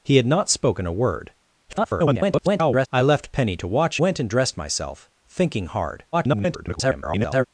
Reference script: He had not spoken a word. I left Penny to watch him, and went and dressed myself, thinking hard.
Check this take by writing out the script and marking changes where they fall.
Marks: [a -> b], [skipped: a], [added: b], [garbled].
He had not spoken a word. [garbled] I left Penny to watch [skipped: him, and] went and dressed myself, thinking hard. [garbled]